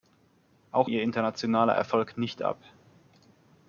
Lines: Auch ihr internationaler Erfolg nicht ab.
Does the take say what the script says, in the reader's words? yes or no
yes